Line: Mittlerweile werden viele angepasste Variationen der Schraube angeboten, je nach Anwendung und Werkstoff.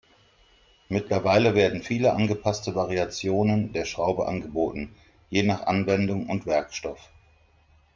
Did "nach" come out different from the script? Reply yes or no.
no